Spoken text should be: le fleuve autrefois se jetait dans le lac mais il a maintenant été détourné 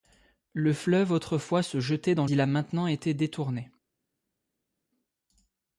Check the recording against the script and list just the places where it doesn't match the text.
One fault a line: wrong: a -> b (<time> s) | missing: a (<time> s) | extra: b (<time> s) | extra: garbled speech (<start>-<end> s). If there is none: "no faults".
missing: le lac mais (2.2 s)